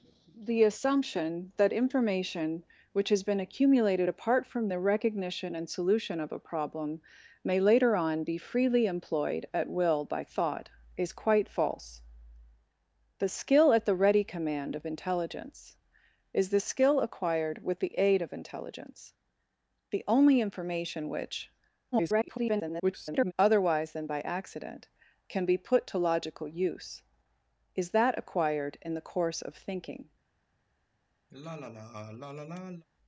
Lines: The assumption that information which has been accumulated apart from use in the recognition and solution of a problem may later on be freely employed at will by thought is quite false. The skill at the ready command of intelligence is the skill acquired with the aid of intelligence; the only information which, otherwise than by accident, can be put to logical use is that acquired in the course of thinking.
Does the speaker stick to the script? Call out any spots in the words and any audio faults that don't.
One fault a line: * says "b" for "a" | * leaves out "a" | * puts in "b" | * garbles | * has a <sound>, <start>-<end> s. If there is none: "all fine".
* leaves out "use in"
* garbles
* has a sigh, 31.3-32.9 s